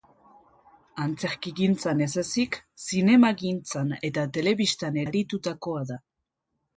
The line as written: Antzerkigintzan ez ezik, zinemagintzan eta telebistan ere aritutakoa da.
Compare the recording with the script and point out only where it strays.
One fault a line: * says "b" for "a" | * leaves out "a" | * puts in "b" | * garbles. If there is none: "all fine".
* leaves out "ere"